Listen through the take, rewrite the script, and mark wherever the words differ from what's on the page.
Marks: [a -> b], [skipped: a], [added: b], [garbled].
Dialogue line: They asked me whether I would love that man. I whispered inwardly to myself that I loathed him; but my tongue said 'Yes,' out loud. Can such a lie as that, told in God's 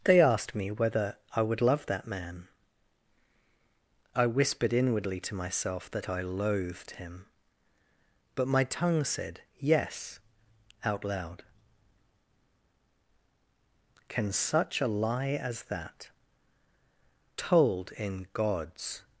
They asked me whether I would love that man. I whispered inwardly to myself that I loathed him; but my tongue said 'Yes,' out loud. Can such a lie as that, told in God's